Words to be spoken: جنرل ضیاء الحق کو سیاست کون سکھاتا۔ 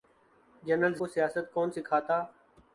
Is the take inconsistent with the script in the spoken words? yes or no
yes